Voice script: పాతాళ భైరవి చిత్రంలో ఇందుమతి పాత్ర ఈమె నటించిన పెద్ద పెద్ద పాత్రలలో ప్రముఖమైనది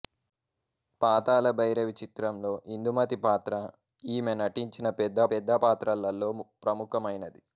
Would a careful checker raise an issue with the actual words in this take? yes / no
no